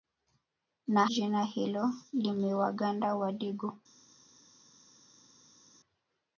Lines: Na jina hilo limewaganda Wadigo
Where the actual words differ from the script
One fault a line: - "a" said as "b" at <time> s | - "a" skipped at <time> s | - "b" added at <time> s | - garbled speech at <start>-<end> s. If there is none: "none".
none